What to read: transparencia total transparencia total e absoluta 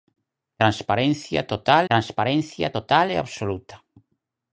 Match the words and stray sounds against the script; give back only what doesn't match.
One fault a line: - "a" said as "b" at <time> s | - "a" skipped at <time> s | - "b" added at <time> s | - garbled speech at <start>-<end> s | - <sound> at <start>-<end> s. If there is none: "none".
none